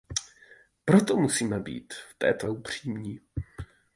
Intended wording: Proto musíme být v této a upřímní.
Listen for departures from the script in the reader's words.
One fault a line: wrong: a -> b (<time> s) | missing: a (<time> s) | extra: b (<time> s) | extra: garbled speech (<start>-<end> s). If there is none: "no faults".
no faults